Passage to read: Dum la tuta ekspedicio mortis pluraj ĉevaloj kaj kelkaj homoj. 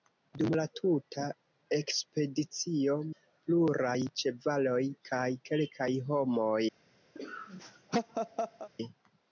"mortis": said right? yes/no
no